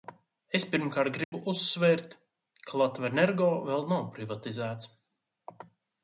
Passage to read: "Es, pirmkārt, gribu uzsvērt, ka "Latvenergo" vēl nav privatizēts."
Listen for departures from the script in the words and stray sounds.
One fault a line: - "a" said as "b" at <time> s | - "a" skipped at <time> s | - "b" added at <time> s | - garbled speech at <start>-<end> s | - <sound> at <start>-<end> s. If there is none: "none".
- dropout at 1.2-1.3 s